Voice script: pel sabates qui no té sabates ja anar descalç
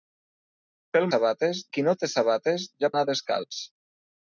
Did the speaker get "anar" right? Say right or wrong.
right